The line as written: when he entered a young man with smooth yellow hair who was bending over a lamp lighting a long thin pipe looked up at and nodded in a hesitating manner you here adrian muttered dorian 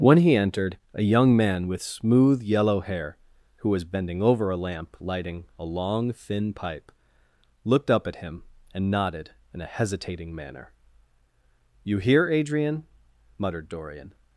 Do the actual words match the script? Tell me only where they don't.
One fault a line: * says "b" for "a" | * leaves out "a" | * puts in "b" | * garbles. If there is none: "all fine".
* puts in "him"